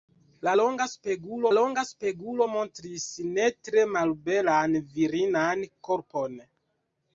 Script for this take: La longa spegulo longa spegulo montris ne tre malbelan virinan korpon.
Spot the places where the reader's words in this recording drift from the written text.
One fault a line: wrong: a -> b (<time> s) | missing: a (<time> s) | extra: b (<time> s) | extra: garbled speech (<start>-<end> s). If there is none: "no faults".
no faults